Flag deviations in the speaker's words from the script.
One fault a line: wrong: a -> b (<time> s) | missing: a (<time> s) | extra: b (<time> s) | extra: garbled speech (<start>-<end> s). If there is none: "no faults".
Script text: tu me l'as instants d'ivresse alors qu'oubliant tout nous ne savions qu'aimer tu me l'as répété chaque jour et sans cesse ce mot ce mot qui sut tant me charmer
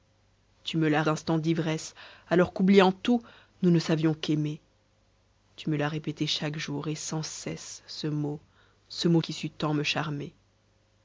no faults